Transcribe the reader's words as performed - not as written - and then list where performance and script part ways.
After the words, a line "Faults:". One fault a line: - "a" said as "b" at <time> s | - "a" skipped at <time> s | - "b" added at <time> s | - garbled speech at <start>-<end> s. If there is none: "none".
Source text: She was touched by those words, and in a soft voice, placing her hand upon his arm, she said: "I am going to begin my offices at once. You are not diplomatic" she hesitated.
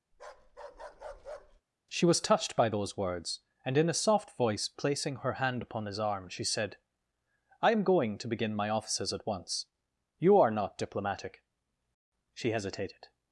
She was touched by those words, and in a soft voice, placing her hand upon his arm, she said: "I am going to begin my offices at once. You are not diplomatic" she hesitated.
Faults:
none